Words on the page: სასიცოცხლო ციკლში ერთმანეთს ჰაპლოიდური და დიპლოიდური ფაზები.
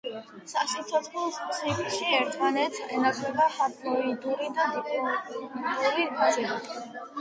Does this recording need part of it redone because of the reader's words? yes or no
yes